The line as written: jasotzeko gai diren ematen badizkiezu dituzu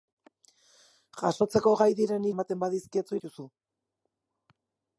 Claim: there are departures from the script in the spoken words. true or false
false